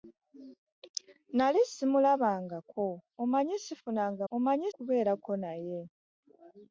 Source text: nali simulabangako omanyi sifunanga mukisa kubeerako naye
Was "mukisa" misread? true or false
true